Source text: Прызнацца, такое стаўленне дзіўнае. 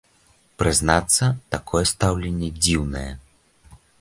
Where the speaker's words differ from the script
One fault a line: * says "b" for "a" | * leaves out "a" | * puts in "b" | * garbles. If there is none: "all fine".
all fine